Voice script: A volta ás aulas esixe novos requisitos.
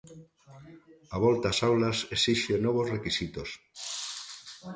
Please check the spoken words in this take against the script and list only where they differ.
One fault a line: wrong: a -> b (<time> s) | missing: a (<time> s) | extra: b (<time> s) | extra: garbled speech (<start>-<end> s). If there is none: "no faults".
no faults